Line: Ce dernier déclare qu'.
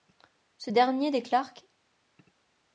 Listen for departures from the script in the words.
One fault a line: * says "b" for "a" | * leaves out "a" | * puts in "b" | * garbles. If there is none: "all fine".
all fine